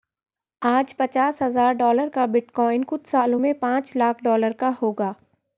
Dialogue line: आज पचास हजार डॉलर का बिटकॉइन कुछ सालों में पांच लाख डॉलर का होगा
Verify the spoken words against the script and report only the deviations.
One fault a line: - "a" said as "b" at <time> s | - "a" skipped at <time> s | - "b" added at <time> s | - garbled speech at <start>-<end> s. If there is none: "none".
none